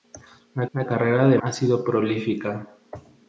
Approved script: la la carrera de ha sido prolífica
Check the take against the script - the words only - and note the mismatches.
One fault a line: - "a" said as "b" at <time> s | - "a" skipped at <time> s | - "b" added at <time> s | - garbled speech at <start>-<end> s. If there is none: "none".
none